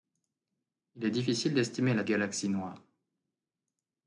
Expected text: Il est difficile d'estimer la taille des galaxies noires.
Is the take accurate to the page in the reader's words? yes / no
no